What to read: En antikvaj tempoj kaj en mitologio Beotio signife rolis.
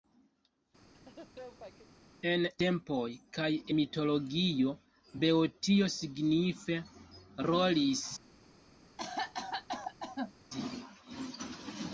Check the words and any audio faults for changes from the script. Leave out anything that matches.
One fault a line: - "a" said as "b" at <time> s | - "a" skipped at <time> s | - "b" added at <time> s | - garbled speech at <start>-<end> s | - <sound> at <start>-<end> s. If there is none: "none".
- laugh at 0.9-2.0 s
- "antikvaj" skipped at 2.4 s
- "en" skipped at 3.5 s
- cough at 9.0-10.3 s